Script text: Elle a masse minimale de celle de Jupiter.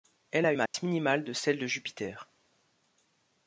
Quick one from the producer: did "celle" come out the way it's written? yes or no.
yes